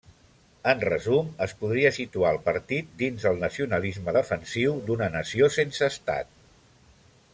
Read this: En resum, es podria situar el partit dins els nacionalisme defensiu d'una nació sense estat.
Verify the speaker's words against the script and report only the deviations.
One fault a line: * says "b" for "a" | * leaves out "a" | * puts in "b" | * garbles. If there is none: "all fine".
* says "el" for "els"